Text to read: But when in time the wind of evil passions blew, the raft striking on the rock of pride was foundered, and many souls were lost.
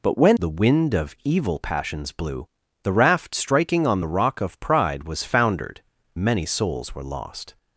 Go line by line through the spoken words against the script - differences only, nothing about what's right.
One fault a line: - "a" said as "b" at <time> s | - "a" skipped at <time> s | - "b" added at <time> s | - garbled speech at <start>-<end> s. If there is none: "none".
- "in time" skipped at 0.4 s
- "and" skipped at 5.8 s